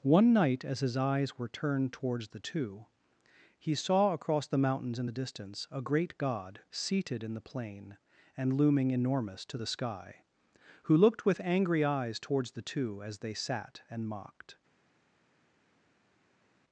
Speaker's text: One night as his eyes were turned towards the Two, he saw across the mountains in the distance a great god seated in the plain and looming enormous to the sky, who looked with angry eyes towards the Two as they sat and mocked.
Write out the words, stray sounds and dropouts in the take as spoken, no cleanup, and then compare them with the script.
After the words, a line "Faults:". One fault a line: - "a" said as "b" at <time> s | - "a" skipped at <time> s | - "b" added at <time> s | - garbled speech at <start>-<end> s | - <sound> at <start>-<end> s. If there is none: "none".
One night as his eyes were turned towards the Two, he saw across the mountains in the distance a great god seated in the plain and looming enormous to the sky, who looked with angry eyes towards the Two as they sat and mocked.
Faults:
none